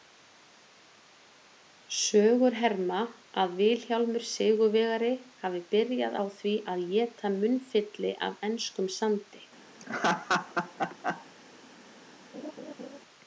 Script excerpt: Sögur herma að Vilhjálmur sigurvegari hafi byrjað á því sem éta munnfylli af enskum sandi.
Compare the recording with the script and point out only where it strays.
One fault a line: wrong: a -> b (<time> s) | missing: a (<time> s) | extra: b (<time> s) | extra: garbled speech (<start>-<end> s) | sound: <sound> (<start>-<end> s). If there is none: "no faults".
wrong: sem -> að (6.7 s)
sound: laugh (9.8-11.3 s)
sound: laugh (12.3-13.0 s)